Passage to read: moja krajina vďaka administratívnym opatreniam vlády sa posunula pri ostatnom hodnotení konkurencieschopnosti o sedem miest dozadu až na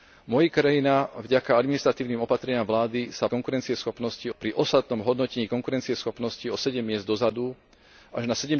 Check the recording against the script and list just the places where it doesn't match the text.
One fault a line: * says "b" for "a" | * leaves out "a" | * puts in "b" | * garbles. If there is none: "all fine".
* says "konkurencieschopnosti" for "posunula"